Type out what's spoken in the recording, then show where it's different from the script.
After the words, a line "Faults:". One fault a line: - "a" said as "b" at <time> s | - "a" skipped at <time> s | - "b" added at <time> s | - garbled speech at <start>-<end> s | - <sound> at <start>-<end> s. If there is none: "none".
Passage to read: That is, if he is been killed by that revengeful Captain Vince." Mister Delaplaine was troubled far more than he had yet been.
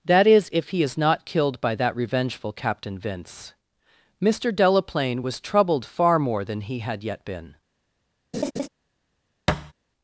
That is, if he is not killed by that revengeful Captain Vince." Mister Delaplaine was troubled far more than he had yet been.
Faults:
- "been" said as "not" at 1.0 s
- laugh at 8.3-8.7 s
- thud at 9.5-9.7 s